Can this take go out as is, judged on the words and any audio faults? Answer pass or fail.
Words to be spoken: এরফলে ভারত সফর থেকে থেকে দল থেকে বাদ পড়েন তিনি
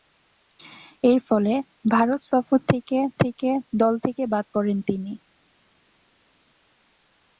pass